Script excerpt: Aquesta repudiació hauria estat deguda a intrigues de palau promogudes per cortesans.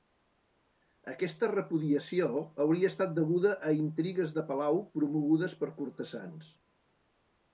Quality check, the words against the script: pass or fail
pass